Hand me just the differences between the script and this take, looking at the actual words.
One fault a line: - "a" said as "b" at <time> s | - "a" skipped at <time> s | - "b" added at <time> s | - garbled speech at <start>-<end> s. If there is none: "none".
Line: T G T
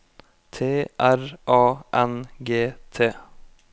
- "R A N" added at 1.0 s